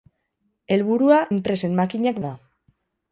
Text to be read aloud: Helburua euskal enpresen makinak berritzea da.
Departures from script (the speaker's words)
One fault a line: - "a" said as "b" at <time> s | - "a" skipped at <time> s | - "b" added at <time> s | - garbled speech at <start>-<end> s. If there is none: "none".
- "euskal" skipped at 1.2 s
- "berritzea" skipped at 2.2 s